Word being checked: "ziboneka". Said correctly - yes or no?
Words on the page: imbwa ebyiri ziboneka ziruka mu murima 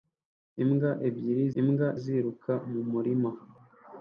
no